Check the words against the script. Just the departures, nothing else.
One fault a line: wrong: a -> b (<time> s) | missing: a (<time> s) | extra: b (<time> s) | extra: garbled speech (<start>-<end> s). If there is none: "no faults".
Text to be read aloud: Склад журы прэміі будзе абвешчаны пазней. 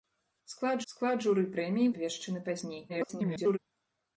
extra: склад (0.9 s)
missing: будзе (1.9 s)
extra: garbled speech (2.9-3.6 s)